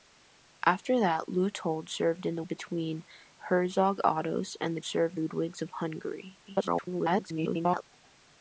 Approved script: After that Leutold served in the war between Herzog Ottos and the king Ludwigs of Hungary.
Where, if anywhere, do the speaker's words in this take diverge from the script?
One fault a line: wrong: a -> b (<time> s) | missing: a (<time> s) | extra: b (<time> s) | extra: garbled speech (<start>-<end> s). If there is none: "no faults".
missing: war (2.4 s)
wrong: king -> served (4.8 s)
extra: garbled speech (6.5-7.8 s)